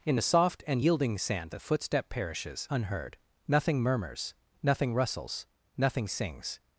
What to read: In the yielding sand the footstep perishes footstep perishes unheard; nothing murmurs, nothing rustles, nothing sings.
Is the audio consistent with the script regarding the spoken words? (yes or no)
no